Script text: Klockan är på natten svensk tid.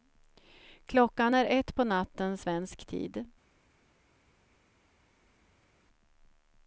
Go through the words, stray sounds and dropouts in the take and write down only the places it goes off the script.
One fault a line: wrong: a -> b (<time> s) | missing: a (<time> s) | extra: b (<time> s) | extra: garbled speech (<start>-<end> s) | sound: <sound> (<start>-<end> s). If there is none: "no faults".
extra: ett (1.5 s)